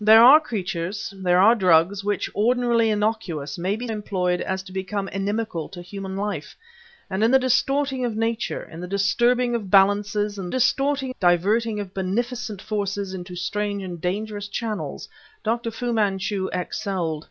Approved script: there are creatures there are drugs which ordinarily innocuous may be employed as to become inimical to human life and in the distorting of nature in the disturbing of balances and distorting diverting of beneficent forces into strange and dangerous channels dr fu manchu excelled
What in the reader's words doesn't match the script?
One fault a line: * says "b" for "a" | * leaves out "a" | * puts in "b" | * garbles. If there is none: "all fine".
all fine